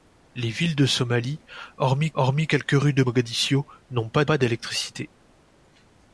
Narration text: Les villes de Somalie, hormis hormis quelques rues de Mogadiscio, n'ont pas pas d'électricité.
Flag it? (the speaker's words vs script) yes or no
no